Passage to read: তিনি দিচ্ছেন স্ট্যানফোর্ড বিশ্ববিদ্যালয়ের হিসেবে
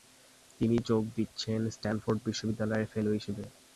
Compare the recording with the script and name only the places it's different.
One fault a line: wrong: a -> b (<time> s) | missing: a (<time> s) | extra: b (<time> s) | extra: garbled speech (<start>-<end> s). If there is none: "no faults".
extra: যোগ (0.9 s)
extra: ফেলো (2.9 s)